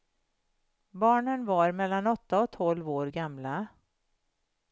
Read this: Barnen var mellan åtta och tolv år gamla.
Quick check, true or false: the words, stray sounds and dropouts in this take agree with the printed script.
true